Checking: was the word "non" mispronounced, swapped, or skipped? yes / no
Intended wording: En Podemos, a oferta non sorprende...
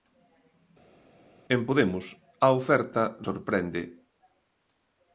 yes